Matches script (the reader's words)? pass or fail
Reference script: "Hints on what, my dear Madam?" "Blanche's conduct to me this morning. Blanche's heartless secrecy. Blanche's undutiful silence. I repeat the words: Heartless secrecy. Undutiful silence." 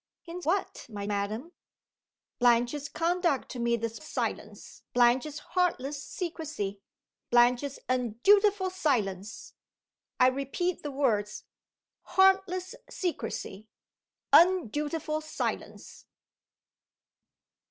fail